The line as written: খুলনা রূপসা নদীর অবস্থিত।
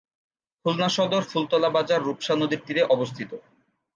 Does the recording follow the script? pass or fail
fail